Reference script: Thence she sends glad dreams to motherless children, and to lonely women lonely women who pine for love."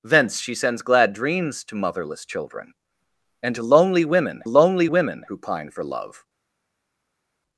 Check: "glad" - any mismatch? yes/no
no